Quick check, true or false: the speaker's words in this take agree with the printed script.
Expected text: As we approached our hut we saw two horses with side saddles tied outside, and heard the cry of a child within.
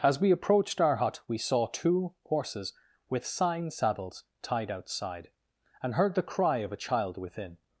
false